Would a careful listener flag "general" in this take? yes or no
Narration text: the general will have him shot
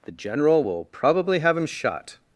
no